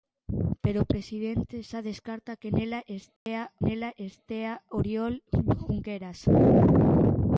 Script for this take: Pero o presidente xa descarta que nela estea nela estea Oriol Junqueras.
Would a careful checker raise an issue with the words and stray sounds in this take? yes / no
yes